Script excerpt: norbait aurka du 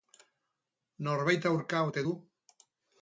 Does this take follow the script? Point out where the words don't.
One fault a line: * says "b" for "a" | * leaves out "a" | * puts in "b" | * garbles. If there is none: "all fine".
* puts in "ote"